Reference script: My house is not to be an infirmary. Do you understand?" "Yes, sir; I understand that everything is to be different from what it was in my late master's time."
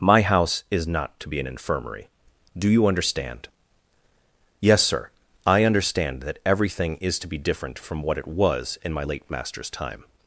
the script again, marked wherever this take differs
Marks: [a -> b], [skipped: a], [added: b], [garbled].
My house is not to be an infirmary. Do you understand?" "Yes, sir; I understand that everything is to be different from what it was in my late master's time."